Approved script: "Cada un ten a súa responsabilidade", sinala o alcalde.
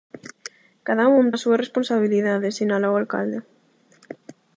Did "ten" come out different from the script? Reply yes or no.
yes